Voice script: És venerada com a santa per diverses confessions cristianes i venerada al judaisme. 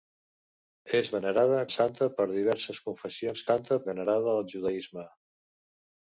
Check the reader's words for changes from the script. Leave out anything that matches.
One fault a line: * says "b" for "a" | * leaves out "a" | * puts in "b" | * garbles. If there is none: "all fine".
* leaves out "com"
* says "santa" for "cristianes"